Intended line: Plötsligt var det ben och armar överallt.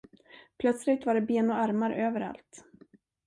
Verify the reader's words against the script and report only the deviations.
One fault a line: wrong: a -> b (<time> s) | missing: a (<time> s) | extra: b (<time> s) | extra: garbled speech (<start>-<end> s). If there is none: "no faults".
no faults